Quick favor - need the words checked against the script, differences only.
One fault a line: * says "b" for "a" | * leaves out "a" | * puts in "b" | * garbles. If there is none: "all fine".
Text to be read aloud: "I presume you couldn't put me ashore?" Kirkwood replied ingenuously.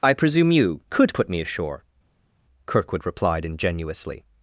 * says "could" for "couldn't"